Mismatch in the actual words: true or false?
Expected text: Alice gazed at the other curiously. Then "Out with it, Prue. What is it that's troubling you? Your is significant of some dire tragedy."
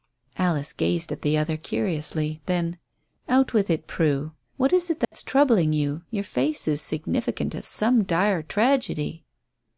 true